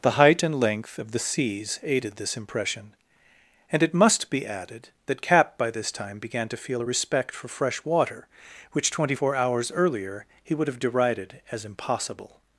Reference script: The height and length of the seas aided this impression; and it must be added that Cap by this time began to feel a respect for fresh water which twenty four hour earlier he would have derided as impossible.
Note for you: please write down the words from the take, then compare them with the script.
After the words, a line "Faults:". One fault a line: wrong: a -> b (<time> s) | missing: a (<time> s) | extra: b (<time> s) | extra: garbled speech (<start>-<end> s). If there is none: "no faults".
The height and length of the seas aided this impression; and it must be added that Cap by this time began to feel a respect for fresh water which twenty four hours earlier he would have derided as impossible.
Faults:
wrong: hour -> hours (9.4 s)